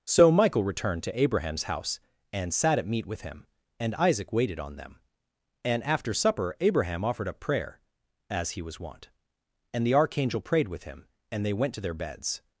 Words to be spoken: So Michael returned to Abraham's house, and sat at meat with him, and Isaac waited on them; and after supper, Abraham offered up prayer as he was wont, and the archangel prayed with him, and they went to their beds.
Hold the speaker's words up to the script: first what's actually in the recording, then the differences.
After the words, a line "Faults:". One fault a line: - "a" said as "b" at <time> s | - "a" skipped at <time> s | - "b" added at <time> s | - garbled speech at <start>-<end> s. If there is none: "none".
So Michael returned to Abraham's house, and sat at meat with him, and Isaac waited on them; and after supper, Abraham offered up prayer as he was wont, and the archangel prayed with him, and they went to their beds.
Faults:
none